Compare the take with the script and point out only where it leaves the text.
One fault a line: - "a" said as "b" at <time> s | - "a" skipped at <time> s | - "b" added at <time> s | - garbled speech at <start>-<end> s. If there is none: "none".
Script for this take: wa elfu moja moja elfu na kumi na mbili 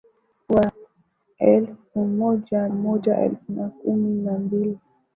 none